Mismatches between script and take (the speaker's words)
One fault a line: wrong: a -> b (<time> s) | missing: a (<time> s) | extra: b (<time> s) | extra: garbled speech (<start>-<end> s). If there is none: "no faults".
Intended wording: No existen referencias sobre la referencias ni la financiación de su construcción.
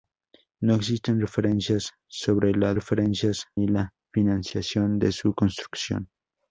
no faults